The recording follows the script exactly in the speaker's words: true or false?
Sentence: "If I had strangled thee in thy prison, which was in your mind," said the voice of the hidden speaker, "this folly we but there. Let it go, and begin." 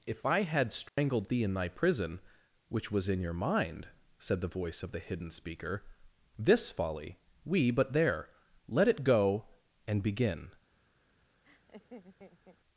true